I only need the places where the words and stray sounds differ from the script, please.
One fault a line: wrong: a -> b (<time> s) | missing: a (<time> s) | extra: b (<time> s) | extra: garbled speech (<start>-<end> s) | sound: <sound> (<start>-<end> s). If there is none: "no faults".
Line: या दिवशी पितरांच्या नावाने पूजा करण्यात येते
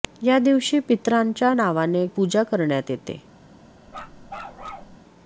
sound: bark (3.9-5.0 s)